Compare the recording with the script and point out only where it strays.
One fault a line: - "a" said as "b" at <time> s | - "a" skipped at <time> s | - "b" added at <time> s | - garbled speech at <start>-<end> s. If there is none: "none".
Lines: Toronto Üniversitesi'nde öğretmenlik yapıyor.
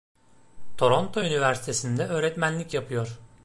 none